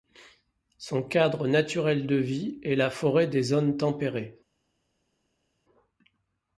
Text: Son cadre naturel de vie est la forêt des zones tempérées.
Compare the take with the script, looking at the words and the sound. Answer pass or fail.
pass